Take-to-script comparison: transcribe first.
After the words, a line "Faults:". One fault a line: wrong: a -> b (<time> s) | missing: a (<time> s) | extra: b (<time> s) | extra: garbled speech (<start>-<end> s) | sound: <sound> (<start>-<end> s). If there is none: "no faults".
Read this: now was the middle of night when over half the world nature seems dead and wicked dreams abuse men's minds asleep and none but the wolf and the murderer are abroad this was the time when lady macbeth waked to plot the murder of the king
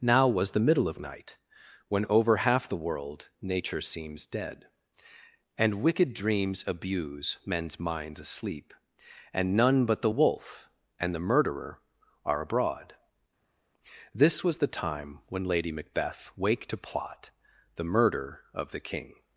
now was the middle of night when over half the world nature seems dead and wicked dreams abuse men's minds asleep and none but the wolf and the murderer are abroad this was the time when lady macbeth waked to plot the murder of the king
Faults:
no faults